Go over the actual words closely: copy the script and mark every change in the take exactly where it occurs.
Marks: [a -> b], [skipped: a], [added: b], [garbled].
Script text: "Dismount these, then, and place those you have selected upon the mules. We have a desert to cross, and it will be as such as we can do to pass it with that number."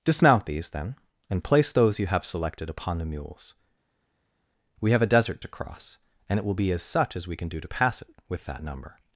"Dismount these, then, and place those you have selected upon the mules. We have a desert to cross, and it will be as such as we can do to pass it with that number."